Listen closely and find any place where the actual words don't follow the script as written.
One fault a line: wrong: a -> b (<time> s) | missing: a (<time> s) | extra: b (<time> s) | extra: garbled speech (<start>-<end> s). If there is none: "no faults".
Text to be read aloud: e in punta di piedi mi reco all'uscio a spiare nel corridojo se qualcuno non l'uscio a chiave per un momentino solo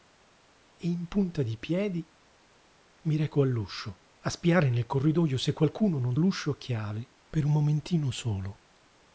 no faults